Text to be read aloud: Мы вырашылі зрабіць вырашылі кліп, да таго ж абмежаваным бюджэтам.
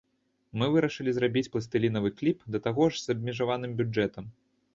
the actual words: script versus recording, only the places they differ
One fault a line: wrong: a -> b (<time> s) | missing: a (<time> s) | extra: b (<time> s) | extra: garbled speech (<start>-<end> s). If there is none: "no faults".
wrong: вырашылі -> пластылінавы (1.6 s)
extra: з (3.0 s)